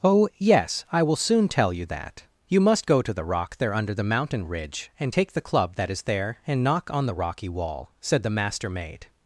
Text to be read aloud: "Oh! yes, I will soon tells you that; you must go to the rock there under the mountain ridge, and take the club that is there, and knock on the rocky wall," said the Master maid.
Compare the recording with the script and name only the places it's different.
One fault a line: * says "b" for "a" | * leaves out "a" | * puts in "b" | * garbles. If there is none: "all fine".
* says "tell" for "tells"